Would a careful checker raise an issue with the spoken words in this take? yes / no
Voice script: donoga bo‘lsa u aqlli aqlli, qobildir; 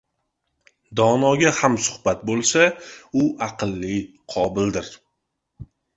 yes